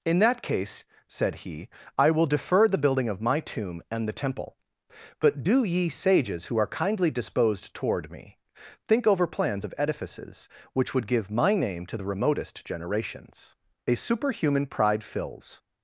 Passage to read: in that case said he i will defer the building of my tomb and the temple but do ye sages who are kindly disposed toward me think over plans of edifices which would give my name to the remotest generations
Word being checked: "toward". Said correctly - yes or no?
yes